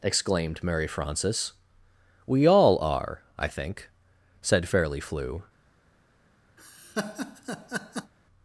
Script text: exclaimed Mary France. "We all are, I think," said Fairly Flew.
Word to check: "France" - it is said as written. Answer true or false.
false